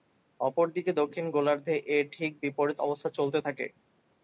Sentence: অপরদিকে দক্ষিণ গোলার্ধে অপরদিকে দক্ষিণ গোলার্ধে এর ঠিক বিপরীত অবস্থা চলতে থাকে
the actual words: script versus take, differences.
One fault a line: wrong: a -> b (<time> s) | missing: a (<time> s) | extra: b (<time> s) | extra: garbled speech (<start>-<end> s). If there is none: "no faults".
missing: অপরদিকে দক্ষিণ গোলার্ধে (1.7 s)